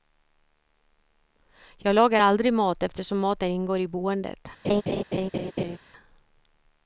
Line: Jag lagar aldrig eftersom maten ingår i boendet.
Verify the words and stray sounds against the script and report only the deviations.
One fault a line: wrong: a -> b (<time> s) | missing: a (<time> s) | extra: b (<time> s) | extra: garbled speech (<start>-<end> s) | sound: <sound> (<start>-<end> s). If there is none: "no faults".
extra: mat (2.5 s)
sound: laugh (4.6-5.8 s)